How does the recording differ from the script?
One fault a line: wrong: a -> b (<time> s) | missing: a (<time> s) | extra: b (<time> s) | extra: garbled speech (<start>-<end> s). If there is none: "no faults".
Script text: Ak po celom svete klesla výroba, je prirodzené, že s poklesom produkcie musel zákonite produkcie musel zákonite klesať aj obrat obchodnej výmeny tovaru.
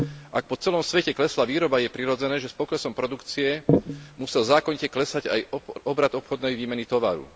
missing: produkcie musel zákonite (4.9 s)